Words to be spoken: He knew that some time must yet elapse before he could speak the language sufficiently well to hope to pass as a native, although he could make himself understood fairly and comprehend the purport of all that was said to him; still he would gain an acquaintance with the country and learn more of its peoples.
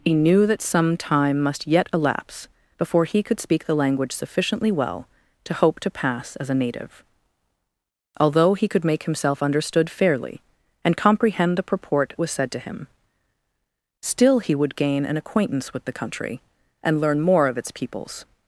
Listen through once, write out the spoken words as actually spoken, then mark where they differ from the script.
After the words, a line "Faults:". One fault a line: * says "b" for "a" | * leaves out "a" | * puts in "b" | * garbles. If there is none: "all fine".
He knew that some time must yet elapse before he could speak the language sufficiently well to hope to pass as a native, although he could make himself understood fairly and comprehend the purport was said to him; still he would gain an acquaintance with the country and learn more of its peoples.
Faults:
* leaves out "of all that"